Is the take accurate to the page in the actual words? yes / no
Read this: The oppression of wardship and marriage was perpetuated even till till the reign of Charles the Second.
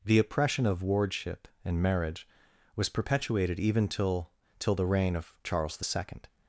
yes